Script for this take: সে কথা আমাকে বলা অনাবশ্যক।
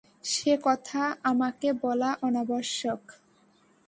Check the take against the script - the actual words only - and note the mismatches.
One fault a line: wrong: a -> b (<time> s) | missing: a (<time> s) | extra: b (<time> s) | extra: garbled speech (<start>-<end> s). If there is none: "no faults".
no faults